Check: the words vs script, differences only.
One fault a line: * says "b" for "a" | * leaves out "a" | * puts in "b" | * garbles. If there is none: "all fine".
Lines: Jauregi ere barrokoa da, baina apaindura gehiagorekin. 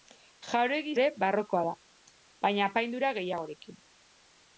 all fine